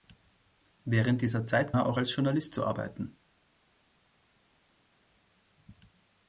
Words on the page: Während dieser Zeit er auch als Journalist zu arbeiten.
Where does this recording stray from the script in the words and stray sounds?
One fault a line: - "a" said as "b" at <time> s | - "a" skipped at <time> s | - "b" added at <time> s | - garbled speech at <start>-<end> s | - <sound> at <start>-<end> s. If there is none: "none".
none